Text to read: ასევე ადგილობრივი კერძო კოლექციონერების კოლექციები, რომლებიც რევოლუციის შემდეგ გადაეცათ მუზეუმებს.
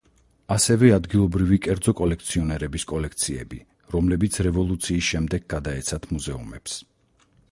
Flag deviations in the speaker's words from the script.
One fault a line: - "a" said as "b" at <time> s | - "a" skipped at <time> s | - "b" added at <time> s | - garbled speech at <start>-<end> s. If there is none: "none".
none